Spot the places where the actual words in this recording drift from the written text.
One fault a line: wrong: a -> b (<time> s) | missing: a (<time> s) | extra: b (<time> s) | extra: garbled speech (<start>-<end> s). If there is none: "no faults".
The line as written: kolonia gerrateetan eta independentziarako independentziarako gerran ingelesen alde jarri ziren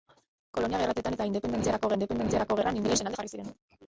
no faults